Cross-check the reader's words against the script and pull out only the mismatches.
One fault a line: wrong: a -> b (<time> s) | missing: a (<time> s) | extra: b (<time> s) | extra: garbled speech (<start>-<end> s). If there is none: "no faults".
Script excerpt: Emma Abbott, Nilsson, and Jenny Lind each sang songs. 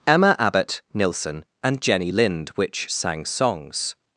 wrong: each -> which (2.5 s)